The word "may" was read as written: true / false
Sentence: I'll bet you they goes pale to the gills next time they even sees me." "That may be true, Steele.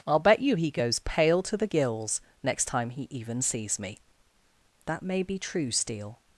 true